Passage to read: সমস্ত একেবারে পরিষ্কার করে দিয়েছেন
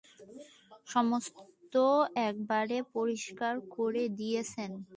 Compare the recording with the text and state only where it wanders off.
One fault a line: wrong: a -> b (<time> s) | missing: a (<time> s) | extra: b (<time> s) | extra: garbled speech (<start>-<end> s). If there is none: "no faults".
no faults